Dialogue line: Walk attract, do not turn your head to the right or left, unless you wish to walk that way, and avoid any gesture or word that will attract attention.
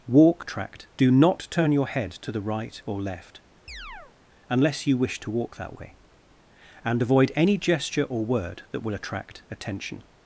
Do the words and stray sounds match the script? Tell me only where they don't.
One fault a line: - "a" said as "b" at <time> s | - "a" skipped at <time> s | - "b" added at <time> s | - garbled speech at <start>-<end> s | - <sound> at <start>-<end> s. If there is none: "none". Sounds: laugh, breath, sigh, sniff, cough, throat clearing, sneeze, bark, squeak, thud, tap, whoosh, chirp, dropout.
- chirp at 3.7-4.1 s